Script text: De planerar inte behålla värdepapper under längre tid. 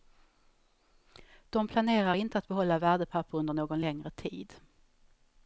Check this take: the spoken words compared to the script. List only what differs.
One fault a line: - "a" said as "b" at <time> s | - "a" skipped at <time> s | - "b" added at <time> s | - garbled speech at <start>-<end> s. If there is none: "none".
- "att" added at 2.4 s
- "någon" added at 3.5 s